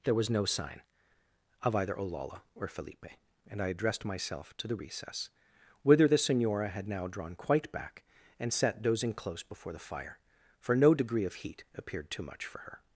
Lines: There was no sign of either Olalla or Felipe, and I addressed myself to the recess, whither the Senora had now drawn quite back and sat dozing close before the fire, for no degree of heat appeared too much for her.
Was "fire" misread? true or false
false